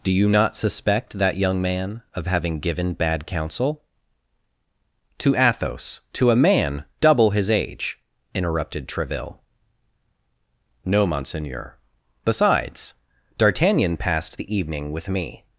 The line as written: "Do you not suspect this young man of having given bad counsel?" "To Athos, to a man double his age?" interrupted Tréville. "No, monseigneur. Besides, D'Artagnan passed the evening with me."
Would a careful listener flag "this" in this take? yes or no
yes